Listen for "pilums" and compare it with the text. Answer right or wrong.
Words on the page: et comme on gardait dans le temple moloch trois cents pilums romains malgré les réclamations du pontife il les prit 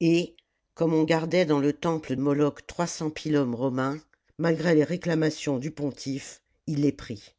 right